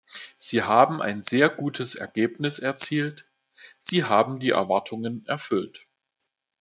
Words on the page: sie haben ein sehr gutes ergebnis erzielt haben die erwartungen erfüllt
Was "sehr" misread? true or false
false